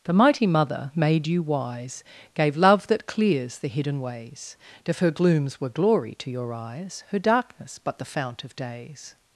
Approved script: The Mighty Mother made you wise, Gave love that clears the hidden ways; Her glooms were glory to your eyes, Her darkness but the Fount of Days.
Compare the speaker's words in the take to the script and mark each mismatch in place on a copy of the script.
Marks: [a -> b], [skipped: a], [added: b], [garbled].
The Mighty Mother made you wise, Gave love that clears the hidden ways; [added: if] Her glooms were glory to your eyes, Her darkness but the Fount of Days.